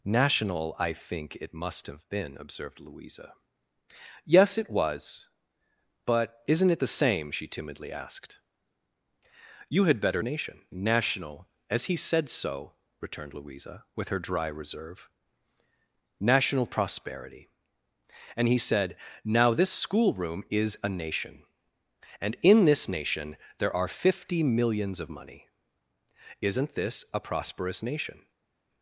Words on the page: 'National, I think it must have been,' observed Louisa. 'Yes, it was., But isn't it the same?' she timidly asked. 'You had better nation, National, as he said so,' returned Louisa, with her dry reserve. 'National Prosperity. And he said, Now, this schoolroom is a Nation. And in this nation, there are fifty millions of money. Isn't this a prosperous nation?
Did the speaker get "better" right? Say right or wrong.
right